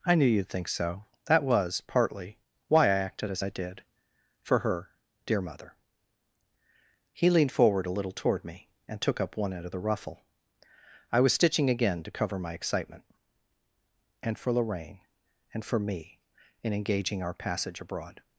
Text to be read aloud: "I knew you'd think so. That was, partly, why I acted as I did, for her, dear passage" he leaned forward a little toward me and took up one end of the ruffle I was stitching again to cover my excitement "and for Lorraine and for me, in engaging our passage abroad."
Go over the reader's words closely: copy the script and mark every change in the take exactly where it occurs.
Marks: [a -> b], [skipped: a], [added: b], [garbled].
"I knew you'd think so. That was, partly, why I acted as I did, for her, dear [passage" -> mother] he leaned forward a little toward me and took up one end of the ruffle I was stitching again to cover my excitement "and for Lorraine and for me, in engaging our passage abroad."